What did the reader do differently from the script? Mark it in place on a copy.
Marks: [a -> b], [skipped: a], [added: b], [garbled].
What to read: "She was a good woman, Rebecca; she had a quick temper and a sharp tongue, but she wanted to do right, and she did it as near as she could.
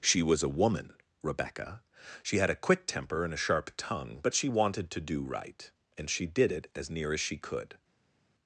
"She was a [skipped: good] woman, Rebecca; she had a quick temper and a sharp tongue, but she wanted to do right, and she did it as near as she could.